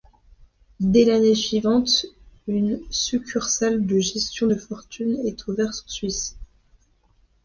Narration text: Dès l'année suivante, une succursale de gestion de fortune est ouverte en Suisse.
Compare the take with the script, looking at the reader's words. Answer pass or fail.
pass